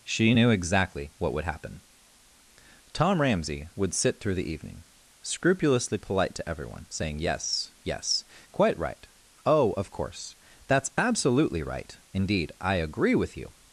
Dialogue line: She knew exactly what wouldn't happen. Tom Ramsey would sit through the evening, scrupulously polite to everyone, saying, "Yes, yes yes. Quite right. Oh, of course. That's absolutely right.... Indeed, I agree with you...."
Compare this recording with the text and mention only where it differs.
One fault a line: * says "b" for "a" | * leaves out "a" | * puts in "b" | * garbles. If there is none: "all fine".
* says "would" for "wouldn't"
* leaves out "yes"